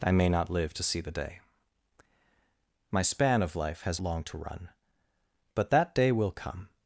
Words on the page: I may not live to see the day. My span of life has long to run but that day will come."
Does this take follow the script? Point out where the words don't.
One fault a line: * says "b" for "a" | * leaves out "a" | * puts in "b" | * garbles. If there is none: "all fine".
all fine